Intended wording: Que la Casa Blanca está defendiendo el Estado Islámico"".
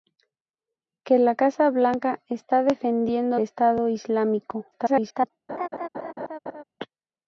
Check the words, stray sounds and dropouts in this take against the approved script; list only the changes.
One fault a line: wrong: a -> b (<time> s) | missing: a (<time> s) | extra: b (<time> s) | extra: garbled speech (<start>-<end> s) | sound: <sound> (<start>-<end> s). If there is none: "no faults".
missing: el (3.4 s)
extra: garbled speech (4.7-5.3 s)
sound: laugh (5.5-6.6 s)